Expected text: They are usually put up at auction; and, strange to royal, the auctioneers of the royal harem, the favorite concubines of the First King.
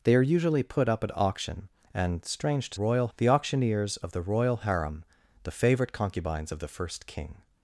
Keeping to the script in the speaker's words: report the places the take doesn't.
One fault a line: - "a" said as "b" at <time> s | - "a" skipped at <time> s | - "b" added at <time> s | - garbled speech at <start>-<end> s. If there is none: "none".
none